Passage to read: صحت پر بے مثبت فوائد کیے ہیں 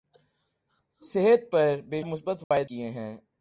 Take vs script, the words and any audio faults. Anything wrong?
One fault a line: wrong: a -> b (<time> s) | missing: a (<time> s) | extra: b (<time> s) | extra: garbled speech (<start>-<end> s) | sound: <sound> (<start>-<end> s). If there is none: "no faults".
sound: dropout (2.4-2.5 s)